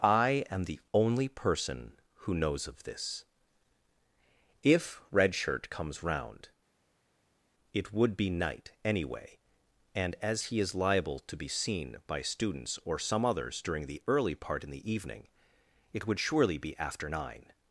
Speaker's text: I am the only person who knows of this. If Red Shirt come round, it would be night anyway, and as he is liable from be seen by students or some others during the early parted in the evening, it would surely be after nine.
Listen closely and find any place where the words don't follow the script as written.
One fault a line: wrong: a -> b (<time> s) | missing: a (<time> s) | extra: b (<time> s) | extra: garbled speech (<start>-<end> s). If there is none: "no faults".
wrong: come -> comes (5.7 s)
wrong: from -> to (11.2 s)
wrong: parted -> part (14.3 s)